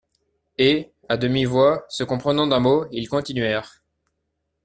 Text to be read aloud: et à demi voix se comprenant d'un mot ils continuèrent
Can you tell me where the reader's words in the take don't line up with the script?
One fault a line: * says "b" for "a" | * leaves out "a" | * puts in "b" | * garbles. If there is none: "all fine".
all fine